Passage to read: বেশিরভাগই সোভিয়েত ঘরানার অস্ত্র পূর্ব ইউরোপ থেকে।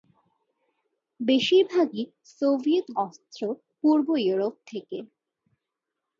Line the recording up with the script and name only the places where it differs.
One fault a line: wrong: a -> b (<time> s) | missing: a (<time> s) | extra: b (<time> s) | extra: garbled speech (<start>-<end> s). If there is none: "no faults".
missing: ঘরানার (2.9 s)